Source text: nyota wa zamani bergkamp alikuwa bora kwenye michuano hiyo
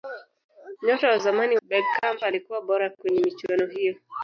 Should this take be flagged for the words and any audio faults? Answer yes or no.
no